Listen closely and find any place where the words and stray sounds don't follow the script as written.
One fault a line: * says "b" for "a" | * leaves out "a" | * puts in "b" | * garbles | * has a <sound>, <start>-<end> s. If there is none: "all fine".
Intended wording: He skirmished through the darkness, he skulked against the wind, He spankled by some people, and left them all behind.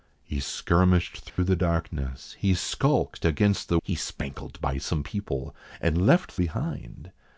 * has a dropout, 1.3-1.4 s
* leaves out "wind"
* leaves out "them all"